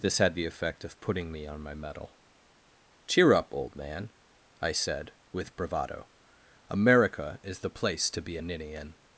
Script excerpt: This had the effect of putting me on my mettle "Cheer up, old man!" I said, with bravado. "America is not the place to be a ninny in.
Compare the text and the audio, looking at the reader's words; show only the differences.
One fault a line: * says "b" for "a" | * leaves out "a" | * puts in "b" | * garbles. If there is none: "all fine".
* leaves out "not"